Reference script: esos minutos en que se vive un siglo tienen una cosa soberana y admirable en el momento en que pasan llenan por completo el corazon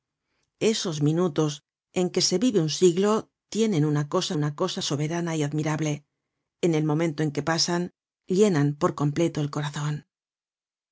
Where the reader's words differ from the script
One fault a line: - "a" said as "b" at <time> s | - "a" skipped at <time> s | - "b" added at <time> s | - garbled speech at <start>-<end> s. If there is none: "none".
- "una cosa" added at 4.3 s